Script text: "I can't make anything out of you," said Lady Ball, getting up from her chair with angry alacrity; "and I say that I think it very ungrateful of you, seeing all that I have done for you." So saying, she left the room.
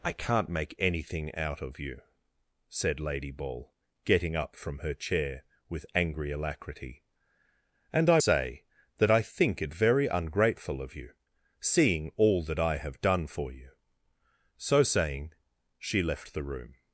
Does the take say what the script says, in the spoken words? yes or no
yes